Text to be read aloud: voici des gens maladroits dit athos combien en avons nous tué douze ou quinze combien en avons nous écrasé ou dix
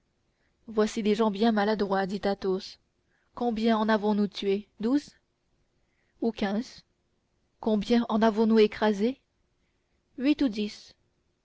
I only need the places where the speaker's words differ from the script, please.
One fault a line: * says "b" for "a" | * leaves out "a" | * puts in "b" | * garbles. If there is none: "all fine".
* puts in "bien"
* puts in "huit"